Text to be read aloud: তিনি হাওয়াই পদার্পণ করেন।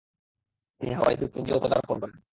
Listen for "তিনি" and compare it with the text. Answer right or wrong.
right